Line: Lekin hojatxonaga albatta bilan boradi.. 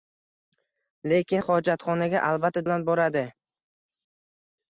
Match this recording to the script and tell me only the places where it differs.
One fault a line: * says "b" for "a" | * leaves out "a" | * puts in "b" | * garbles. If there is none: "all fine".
all fine